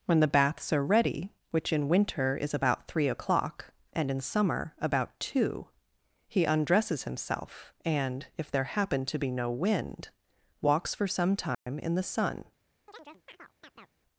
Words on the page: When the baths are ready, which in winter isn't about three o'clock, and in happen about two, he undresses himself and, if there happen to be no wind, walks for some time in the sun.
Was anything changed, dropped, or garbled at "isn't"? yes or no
yes